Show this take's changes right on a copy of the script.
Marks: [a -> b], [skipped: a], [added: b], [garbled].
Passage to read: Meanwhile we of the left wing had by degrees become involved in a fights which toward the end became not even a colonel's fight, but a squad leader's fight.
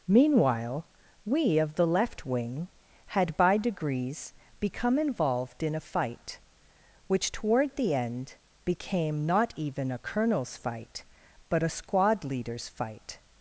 Meanwhile we of the left wing had by degrees become involved in a [fights -> fight] which toward the end became not even a colonel's fight, but a squad leader's fight.